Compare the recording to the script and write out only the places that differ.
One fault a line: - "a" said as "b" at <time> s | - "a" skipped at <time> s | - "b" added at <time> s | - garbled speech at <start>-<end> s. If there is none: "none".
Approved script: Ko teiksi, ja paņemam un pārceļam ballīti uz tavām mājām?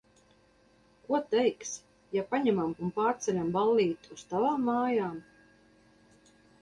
none